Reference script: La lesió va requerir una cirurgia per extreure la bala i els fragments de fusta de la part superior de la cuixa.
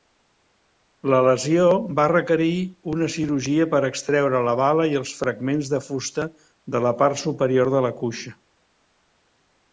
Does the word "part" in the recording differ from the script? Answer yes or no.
no